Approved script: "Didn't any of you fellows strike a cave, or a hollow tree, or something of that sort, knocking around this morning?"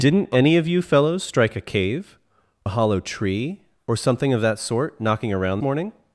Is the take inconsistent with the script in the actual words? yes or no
yes